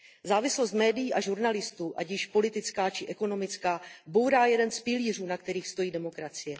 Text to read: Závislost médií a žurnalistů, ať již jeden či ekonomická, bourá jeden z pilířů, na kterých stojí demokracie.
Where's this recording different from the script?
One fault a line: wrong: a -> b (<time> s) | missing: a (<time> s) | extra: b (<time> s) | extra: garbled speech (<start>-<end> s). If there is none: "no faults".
wrong: jeden -> politická (2.3 s)